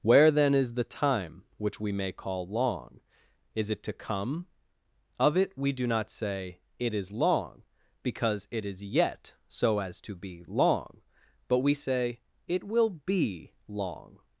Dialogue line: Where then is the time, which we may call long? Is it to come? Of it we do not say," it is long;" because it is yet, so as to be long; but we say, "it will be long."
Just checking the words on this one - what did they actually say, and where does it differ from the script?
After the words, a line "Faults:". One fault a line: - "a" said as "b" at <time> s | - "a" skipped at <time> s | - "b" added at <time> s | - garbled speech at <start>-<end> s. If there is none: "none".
Where then is the time, which we may call long? Is it to come? Of it we do not say," it is long;" because it is yet, so as to be long; but we say, "it will be long."
Faults:
none